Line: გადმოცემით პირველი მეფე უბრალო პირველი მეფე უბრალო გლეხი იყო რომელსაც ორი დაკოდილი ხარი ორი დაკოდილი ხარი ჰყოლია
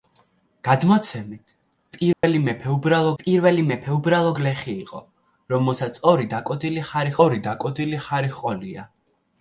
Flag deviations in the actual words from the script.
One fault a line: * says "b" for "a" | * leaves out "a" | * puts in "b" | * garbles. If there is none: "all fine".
all fine